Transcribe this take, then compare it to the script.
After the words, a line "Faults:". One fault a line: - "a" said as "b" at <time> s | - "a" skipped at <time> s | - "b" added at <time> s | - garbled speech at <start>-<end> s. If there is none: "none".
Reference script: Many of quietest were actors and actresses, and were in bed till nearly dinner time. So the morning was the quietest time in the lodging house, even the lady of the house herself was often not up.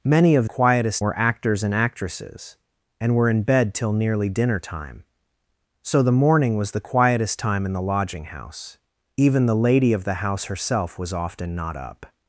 Many of quietest were actors and actresses, and were in bed till nearly dinner time. So the morning was the quietest time in the lodging house, even the lady of the house herself was often not up.
Faults:
none